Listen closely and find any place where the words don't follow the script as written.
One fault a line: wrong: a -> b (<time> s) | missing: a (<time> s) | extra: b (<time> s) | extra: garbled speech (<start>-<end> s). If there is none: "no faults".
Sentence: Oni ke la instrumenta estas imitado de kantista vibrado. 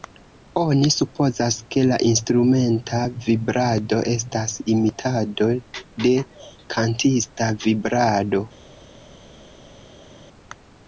extra: supozas (0.9 s)
extra: vibrado (3.2 s)